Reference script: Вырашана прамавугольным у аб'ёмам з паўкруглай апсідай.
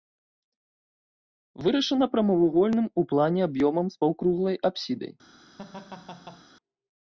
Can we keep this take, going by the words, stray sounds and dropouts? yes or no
no